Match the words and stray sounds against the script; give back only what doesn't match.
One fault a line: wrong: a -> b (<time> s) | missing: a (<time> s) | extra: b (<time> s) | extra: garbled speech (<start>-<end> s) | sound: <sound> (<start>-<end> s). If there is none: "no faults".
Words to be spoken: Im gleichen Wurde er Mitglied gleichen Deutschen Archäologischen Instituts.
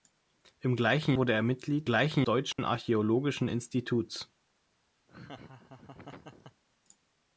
sound: dropout (2.5-2.6 s)
sound: laugh (5.1-6.6 s)